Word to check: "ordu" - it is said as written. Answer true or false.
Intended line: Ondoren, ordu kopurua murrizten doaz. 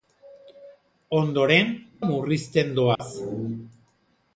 false